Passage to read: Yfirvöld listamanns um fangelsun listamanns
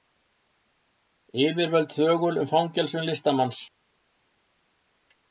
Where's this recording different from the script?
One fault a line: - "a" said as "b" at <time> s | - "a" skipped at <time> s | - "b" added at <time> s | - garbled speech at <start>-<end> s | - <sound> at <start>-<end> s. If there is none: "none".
- "listamanns" said as "þögul" at 2.0 s